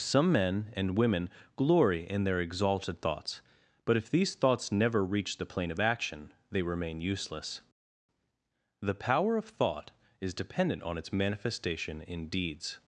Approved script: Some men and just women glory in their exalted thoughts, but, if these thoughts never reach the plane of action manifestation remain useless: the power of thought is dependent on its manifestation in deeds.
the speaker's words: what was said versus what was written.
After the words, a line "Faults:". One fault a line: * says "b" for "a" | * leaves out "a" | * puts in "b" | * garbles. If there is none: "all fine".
Some men and women glory in their exalted thoughts, but, if these thoughts never reach the plane of action they remain useless: the power of thought is dependent on its manifestation in deeds.
Faults:
* leaves out "just"
* says "they" for "manifestation"